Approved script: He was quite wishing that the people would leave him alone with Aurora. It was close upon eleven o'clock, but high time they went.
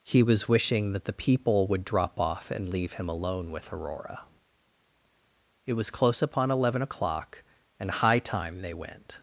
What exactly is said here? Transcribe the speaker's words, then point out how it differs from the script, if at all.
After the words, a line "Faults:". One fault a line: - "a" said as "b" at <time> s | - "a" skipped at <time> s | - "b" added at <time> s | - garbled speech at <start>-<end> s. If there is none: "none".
He was wishing that the people would drop off and leave him alone with Aurora. It was close upon eleven o'clock, and high time they went.
Faults:
- "quite" skipped at 0.5 s
- "drop off and" added at 1.8 s
- "but" said as "and" at 7.8 s